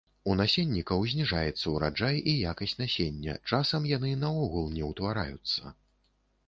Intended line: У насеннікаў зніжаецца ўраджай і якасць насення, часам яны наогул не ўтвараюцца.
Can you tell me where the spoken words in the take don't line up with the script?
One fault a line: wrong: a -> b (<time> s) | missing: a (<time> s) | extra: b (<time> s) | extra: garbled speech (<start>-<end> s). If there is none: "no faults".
no faults